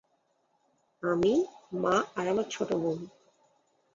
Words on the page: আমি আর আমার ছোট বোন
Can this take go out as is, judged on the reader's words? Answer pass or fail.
fail